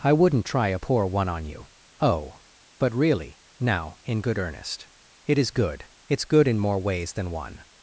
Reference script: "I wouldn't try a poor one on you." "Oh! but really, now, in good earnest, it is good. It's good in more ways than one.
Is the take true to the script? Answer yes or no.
yes